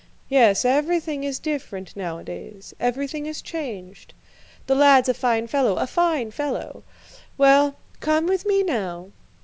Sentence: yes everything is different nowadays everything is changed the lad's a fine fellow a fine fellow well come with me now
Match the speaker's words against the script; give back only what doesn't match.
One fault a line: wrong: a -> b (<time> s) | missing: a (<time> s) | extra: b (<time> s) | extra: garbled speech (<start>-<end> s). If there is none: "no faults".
no faults